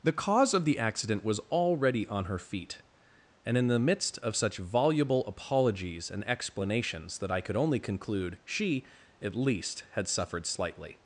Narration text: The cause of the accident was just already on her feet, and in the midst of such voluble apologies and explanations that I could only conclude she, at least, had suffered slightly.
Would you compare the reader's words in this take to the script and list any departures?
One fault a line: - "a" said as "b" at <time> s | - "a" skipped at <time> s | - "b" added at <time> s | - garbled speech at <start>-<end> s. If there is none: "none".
- "just" skipped at 1.4 s